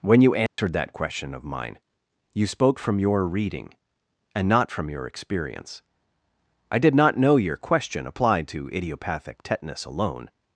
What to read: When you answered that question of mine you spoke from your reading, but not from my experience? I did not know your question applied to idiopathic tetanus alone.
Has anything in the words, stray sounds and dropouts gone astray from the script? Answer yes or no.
yes